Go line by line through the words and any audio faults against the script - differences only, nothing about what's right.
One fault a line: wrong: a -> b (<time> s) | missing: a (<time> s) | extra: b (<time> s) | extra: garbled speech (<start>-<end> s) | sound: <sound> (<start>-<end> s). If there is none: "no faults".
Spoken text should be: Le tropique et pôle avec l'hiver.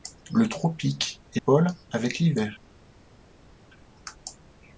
no faults